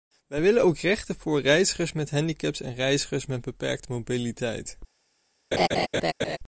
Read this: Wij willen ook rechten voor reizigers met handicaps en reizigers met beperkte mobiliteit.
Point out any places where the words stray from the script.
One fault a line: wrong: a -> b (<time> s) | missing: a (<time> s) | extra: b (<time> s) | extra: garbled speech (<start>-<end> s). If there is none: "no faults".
no faults